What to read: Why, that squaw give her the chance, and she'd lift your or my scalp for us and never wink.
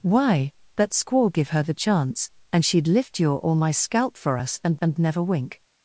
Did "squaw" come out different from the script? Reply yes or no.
no